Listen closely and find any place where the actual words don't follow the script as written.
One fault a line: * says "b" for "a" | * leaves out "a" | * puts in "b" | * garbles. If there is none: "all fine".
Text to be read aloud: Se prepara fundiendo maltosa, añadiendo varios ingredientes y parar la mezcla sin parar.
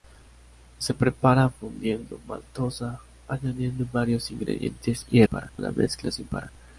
all fine